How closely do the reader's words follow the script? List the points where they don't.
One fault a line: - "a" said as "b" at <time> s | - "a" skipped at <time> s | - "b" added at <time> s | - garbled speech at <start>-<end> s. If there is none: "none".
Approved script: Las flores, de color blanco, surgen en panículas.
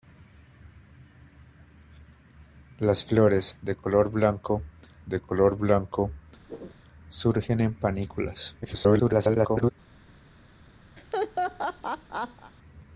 - "de color blanco" added at 5.1 s
- garbled speech at 8.6-9.7 s